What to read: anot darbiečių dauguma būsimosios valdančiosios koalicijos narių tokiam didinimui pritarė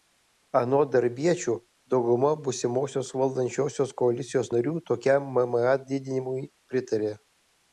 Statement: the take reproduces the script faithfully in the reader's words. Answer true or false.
false